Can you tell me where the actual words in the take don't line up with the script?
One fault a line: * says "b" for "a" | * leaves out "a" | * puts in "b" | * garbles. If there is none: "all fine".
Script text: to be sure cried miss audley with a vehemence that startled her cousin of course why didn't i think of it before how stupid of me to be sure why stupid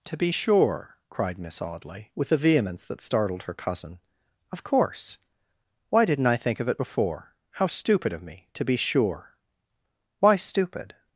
all fine